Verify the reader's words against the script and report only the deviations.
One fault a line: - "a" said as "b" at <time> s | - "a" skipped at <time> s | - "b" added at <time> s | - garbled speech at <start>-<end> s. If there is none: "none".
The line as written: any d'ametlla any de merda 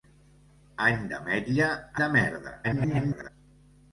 - "any" skipped at 1.7 s
- garbled speech at 2.6-3.3 s